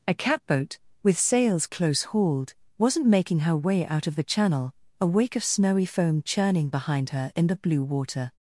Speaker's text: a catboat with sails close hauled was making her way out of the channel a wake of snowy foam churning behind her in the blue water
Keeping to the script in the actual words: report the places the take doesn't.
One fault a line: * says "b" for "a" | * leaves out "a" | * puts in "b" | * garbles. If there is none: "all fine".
* says "wasn't" for "was"